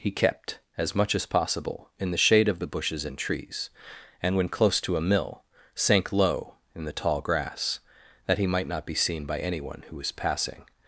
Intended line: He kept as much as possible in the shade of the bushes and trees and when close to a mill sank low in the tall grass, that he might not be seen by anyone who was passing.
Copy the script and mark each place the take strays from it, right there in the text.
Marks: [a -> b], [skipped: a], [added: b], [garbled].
He kept as much as possible in the shade of the bushes and trees and when close to a mill sank low in the tall grass, that he might not be seen by anyone who was passing.